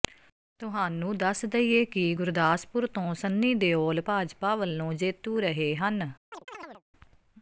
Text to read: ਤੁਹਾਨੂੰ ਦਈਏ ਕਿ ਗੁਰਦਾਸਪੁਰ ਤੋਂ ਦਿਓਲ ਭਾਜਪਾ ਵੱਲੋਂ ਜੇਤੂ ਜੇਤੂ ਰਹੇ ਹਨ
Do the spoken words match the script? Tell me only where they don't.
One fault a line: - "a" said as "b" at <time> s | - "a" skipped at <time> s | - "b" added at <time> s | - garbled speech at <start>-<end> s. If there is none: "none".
- "ਦੱਸ" added at 1.2 s
- "ਸੰਨੀ" added at 3.2 s
- "ਜੇਤੂ" skipped at 5.4 s